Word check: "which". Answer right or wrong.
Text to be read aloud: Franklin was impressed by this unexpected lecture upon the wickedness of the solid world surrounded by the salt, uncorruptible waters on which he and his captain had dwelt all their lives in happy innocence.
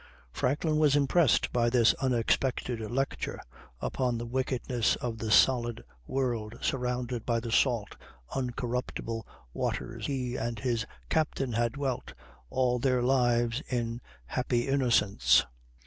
wrong